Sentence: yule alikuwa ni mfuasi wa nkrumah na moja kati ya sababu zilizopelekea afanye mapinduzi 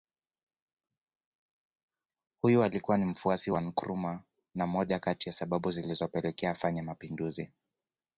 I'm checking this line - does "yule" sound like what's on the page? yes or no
no